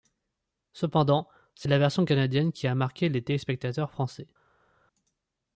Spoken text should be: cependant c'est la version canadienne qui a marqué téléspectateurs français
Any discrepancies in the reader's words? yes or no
yes